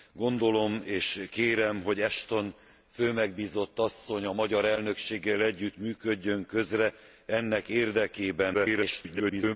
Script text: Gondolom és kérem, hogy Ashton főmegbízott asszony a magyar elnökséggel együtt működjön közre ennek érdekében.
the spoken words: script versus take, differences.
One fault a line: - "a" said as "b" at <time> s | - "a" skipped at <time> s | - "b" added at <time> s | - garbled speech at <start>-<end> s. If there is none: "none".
- garbled speech at 8.5-9.6 s